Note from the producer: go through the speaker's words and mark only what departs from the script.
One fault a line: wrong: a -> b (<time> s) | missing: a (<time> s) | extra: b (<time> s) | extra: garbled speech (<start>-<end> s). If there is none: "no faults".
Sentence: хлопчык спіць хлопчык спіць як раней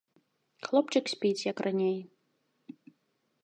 missing: хлопчык спіць (1.5 s)